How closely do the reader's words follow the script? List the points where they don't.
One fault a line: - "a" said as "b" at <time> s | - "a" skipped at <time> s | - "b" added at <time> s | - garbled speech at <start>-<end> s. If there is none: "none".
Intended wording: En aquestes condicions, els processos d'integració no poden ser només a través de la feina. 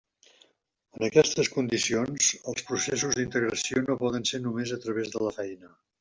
none